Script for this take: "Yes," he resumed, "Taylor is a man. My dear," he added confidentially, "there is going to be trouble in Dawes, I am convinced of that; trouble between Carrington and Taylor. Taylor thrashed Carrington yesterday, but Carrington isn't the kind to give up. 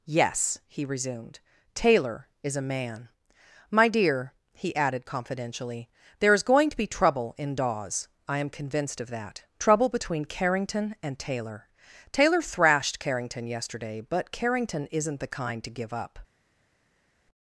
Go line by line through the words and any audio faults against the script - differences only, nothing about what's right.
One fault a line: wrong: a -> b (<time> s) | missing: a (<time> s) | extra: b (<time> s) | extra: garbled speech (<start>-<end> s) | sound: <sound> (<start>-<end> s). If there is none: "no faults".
no faults